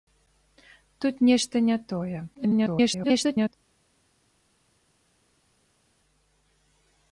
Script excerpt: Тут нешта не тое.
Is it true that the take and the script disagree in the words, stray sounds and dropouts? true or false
true